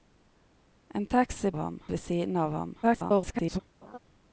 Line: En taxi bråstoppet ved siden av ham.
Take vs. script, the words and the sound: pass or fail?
fail